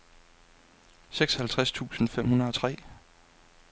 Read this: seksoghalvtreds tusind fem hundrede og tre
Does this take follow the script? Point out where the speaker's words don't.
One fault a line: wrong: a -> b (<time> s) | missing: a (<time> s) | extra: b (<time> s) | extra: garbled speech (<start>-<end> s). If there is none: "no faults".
no faults